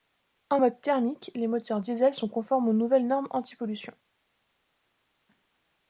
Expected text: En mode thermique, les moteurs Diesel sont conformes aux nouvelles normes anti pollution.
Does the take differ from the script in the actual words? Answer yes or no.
no